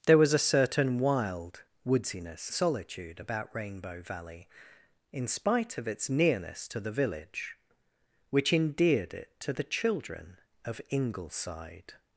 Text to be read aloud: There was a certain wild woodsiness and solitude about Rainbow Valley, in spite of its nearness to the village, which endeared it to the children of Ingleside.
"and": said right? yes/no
no